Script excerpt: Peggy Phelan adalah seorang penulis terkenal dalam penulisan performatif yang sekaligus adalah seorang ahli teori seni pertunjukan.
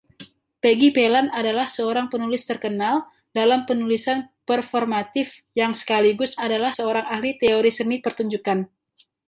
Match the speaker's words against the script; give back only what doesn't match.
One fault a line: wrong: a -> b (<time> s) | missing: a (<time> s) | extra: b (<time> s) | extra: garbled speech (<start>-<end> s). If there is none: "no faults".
no faults